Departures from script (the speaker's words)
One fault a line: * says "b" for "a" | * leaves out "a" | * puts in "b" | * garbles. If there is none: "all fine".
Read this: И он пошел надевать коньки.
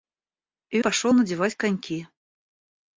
* leaves out "он"